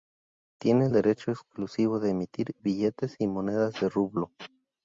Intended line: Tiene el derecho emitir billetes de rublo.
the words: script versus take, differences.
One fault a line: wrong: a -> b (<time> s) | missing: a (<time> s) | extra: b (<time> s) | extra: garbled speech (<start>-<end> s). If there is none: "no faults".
extra: exclusivo de (1.3 s)
extra: y monedas (3.2 s)